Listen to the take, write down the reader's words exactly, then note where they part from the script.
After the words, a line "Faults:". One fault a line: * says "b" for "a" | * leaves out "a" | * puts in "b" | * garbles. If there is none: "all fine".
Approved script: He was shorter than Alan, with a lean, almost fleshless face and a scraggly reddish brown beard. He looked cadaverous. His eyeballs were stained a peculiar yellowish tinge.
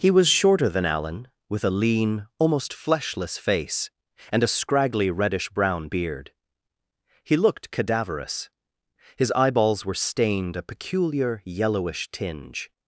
He was shorter than Alan, with a lean, almost fleshless face and a scraggly reddish brown beard. He looked cadaverous. His eyeballs were stained a peculiar yellowish tinge.
Faults:
all fine